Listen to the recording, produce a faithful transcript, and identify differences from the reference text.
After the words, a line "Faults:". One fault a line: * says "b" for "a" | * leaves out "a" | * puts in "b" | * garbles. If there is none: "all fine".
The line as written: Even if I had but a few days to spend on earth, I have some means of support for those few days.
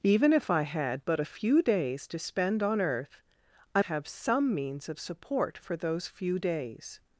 Even if I had but a few days to spend on earth, I have some means of support for those few days.
Faults:
all fine